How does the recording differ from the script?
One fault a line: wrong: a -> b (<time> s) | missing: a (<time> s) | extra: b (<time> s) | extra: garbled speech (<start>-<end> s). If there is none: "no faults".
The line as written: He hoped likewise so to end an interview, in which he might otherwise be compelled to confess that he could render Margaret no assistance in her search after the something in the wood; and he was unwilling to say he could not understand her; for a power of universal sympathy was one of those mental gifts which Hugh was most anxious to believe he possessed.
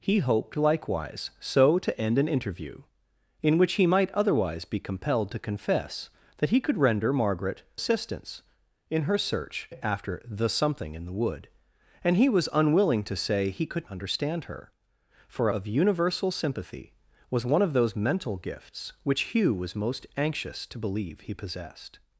missing: no (7.6 s)
missing: not (13.9 s)
missing: a power (15.5 s)